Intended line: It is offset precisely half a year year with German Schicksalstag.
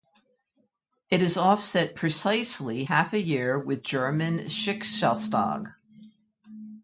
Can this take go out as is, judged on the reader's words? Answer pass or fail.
fail